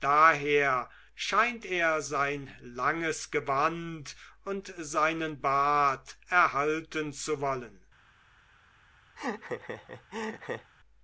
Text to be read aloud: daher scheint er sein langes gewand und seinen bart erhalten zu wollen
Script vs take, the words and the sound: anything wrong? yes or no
yes